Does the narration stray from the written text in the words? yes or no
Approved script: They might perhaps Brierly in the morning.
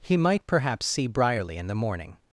yes